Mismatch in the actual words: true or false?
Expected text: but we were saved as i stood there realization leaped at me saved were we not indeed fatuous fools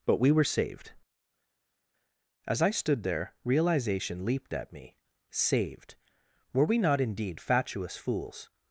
false